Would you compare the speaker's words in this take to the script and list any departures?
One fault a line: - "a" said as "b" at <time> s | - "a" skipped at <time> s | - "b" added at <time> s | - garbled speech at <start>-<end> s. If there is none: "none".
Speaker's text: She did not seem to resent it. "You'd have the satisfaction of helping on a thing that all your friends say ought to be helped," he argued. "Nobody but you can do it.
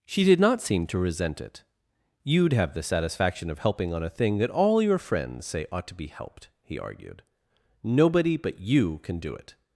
none